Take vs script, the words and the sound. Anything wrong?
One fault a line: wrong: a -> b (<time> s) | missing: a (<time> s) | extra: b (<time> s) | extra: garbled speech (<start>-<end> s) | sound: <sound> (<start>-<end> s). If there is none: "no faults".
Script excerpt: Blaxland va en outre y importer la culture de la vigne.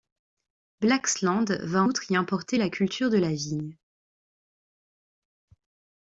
missing: en (1.8 s)